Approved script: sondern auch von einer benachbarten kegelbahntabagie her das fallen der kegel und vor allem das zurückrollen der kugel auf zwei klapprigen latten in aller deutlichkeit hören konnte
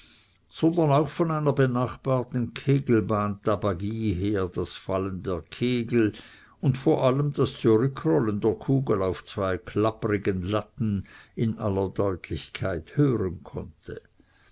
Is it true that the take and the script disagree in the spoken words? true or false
false